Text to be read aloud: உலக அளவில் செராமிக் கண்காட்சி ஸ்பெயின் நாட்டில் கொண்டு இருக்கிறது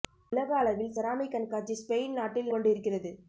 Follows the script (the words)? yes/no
yes